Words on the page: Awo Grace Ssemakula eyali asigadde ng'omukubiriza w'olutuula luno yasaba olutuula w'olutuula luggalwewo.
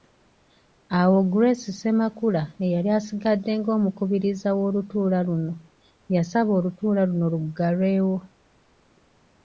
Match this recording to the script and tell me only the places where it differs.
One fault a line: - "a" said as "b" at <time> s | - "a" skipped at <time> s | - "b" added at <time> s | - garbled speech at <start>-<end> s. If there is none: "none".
- "w'olutuula" said as "luno" at 7.1 s